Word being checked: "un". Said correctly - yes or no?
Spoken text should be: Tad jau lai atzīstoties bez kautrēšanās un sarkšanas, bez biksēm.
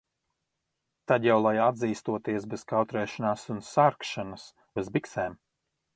yes